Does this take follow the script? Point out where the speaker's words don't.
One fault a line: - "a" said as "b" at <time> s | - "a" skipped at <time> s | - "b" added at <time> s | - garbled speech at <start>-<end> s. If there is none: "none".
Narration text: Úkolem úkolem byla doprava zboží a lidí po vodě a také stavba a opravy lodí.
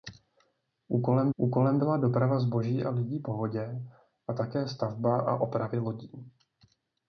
none